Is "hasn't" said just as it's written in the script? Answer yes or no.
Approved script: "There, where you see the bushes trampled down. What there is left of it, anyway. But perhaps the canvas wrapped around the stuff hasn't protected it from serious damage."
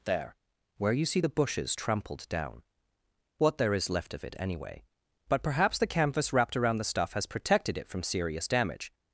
no